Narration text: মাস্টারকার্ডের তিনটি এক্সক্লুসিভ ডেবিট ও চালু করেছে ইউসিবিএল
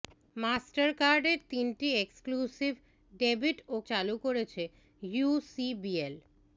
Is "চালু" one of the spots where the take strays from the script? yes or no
no